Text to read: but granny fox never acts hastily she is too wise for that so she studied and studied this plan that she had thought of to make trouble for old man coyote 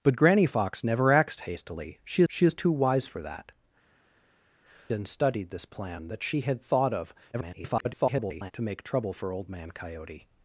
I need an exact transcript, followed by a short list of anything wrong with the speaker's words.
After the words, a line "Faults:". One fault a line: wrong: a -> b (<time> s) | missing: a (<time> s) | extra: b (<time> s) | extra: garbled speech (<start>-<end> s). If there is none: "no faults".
but granny fox never acts hastily she she is too wise for that and studied this plan that she had thought of [garbled] to make trouble for old man coyote
Faults:
extra: she (2.3 s)
missing: so she studied (3.5 s)
extra: garbled speech (7.3-8.5 s)